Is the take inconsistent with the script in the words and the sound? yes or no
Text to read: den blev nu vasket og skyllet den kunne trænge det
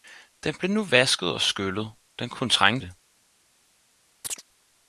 yes